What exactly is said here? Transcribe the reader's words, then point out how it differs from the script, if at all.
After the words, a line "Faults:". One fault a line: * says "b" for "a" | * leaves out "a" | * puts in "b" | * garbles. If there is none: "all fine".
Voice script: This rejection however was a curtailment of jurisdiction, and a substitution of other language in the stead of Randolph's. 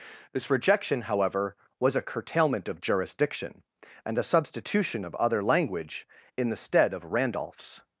This rejection however was a curtailment of jurisdiction, and a substitution of other language in the stead of Randolph's.
Faults:
all fine